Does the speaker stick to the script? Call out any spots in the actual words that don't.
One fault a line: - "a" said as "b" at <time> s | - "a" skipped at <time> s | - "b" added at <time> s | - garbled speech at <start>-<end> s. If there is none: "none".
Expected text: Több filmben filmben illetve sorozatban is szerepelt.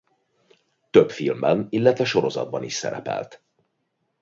- "filmben" skipped at 1.7 s